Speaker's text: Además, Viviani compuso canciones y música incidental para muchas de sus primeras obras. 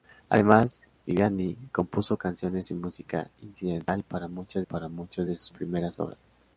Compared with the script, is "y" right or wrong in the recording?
right